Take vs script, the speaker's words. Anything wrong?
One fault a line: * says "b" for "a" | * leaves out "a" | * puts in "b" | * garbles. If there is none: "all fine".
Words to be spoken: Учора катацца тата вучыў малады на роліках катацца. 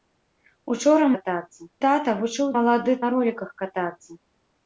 all fine